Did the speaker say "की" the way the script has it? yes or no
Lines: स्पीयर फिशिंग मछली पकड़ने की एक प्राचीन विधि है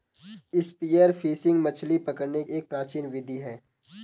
no